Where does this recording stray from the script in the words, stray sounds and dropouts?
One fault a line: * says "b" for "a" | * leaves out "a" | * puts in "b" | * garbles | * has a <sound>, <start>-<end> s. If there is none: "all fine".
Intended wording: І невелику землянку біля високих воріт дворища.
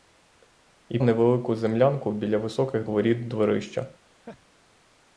* has a laugh, 4.0-4.5 s